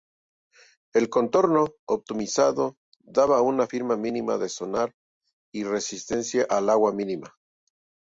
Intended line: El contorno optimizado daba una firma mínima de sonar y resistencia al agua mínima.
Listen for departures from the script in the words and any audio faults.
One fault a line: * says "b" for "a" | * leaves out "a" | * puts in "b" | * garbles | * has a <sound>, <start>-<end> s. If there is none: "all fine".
all fine